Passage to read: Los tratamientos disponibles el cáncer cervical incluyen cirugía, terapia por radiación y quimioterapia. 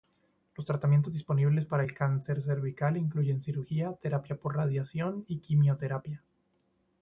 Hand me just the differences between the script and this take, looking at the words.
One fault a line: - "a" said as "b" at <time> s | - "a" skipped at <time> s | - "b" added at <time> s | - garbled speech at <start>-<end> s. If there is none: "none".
- "para" added at 1.7 s